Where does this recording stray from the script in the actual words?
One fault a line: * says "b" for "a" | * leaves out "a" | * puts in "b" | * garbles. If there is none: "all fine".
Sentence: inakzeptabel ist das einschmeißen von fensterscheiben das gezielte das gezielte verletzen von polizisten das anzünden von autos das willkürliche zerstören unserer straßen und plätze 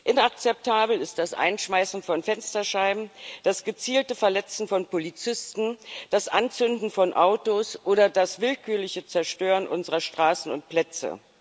* leaves out "das gezielte"
* puts in "oder"